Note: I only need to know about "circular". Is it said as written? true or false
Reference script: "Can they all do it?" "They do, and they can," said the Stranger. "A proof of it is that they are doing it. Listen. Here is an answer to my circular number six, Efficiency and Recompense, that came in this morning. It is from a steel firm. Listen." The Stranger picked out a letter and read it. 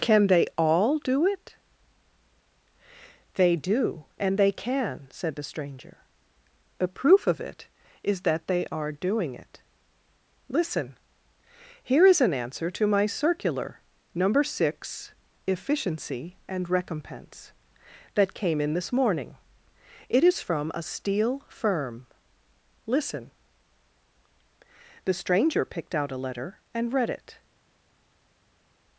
true